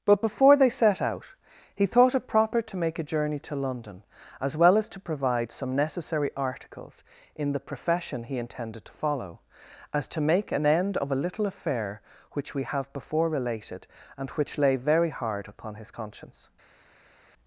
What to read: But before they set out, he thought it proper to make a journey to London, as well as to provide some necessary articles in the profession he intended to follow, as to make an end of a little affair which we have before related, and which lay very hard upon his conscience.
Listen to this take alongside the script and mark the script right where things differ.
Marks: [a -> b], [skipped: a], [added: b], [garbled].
But before they set out, he thought it proper to make a journey to London, as well as to provide some necessary articles in the profession he intended to follow, as to make an end of a little affair which we have before related, and which lay very hard upon his conscience.